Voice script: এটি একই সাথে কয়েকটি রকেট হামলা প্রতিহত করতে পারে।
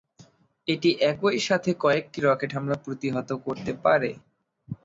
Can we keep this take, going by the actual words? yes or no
yes